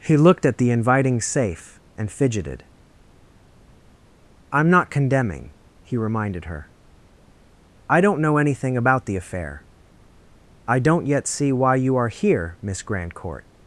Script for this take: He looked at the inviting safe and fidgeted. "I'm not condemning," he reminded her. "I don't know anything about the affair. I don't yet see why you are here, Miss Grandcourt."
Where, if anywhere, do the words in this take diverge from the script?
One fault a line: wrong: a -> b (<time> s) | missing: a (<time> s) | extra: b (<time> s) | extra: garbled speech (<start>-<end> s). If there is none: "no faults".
no faults